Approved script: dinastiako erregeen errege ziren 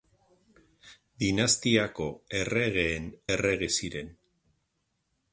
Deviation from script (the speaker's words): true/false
false